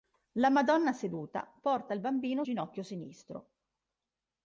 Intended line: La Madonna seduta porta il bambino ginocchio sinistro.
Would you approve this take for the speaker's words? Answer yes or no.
yes